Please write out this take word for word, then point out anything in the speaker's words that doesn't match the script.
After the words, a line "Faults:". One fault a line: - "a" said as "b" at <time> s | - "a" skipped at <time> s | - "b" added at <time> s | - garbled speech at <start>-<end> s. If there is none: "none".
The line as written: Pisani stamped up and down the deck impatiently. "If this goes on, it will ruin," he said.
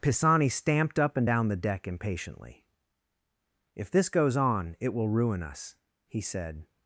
Pisani stamped up and down the deck impatiently. "If this goes on, it will ruin us," he said.
Faults:
- "us" added at 5.4 s